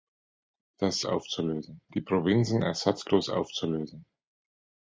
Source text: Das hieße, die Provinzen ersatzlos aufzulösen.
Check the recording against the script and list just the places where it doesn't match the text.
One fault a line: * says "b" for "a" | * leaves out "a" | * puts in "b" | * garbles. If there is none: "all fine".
* says "aufzulösen" for "hieße"